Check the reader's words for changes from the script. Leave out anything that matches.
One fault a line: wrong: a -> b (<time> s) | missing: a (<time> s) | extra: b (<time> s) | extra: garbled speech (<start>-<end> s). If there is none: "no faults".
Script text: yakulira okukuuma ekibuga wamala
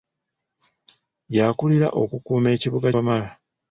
no faults